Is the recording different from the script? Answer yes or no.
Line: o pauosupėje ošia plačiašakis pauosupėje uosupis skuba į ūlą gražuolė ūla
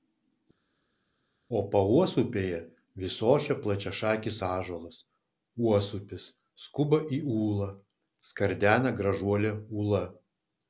yes